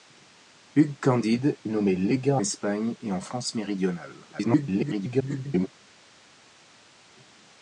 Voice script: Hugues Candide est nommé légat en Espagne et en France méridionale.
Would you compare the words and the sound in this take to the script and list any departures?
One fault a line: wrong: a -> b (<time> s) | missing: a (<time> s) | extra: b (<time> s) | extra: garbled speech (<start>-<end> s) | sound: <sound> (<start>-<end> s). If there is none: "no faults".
missing: est (1.6 s)
missing: en (2.4 s)
extra: garbled speech (4.3-5.7 s)